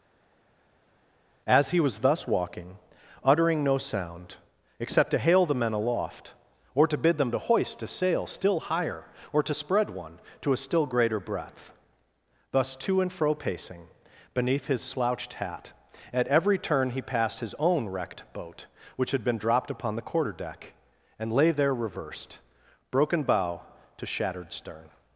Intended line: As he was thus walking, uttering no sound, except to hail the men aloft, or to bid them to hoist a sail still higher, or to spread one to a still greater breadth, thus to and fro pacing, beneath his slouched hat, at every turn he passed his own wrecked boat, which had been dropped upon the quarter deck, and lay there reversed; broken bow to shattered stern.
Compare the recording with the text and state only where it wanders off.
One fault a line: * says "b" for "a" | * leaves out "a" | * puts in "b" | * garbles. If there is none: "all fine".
all fine